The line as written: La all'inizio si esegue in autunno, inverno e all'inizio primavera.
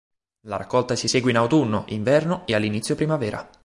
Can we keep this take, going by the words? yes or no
no